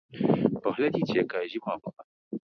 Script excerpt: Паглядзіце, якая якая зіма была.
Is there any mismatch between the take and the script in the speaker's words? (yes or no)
yes